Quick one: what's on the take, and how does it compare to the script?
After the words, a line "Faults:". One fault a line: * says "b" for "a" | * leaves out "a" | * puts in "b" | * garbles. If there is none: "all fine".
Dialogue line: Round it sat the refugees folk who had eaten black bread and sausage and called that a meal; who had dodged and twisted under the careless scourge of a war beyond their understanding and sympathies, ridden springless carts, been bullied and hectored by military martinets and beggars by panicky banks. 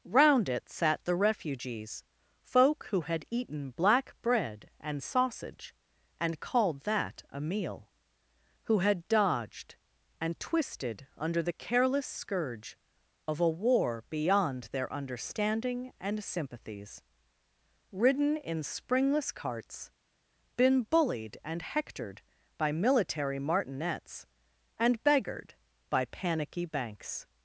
Round it sat the refugees folk who had eaten black bread and sausage and called that a meal; who had dodged and twisted under the careless scourge of a war beyond their understanding and sympathies, ridden in springless carts, been bullied and hectored by military martinets and beggared by panicky banks.
Faults:
* puts in "in"
* says "beggared" for "beggars"